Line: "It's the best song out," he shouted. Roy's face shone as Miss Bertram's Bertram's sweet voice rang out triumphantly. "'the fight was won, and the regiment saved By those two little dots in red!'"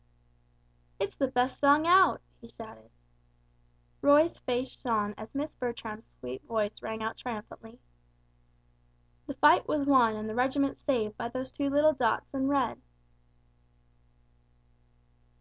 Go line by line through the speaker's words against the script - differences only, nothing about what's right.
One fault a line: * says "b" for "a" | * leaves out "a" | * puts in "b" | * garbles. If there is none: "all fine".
* leaves out "Bertram's"